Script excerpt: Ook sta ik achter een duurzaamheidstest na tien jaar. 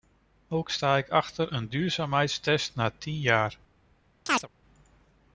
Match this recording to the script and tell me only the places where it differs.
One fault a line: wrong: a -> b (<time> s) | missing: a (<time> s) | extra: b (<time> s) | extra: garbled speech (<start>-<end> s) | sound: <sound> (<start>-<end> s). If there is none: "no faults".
sound: chirp (4.3-4.5 s)